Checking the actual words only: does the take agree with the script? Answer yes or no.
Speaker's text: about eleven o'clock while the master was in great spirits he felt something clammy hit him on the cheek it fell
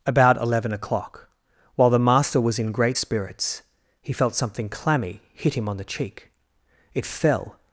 yes